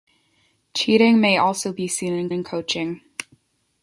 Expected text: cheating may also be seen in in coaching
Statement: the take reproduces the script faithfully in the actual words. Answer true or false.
true